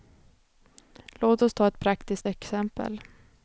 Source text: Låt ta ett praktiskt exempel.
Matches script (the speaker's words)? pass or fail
fail